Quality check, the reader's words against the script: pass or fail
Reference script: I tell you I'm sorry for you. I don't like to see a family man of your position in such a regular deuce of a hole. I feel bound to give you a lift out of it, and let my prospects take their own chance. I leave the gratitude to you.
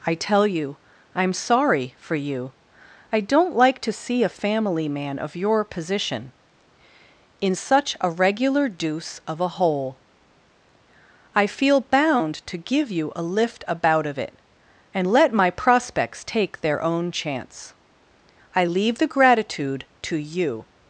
fail